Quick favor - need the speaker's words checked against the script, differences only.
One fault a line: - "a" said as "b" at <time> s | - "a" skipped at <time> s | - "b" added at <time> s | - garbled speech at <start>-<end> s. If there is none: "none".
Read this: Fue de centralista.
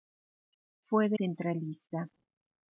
none